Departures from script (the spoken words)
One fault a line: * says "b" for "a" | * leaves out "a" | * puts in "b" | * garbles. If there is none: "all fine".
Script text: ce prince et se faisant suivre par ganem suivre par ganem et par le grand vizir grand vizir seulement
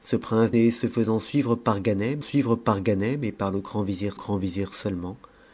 all fine